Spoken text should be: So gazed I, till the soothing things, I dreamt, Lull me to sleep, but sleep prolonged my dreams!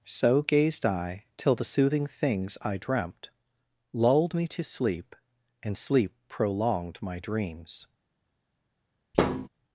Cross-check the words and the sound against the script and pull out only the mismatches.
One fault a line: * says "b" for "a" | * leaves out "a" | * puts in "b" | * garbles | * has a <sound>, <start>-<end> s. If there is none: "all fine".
* says "Lulled" for "Lull"
* says "and" for "but"
* has a thud, 9.1-9.5 s